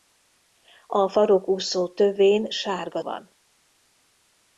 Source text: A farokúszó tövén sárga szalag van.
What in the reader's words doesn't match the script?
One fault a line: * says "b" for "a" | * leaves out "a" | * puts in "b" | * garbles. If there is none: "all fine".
* leaves out "szalag"